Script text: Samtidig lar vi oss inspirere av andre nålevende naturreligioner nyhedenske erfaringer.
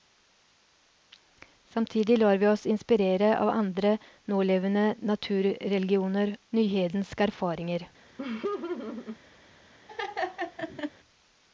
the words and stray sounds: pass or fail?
fail